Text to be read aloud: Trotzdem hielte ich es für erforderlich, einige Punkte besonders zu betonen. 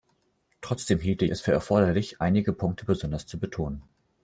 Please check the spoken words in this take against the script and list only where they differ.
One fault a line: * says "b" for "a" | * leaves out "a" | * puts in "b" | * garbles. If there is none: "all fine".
* leaves out "ich"